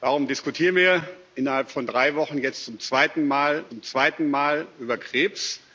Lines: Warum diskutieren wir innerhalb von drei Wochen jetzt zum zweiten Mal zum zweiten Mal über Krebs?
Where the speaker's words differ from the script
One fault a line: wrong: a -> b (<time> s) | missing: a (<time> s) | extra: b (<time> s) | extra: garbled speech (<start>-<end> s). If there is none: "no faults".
no faults